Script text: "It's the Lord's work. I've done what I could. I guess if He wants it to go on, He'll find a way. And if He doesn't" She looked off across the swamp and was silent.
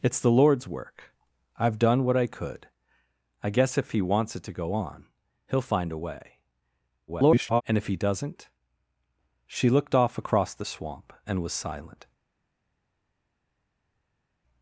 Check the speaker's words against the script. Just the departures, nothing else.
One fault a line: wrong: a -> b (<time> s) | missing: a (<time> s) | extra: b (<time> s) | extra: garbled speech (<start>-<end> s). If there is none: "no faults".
extra: garbled speech (7.1-7.6 s)